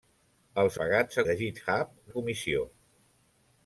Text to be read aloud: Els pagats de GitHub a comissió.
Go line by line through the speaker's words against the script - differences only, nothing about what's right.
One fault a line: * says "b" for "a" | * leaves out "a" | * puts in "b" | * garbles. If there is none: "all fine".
all fine